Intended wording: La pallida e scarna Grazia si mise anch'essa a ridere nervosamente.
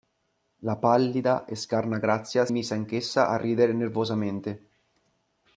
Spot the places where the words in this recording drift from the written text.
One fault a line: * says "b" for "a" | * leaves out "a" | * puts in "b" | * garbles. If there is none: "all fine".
* leaves out "si"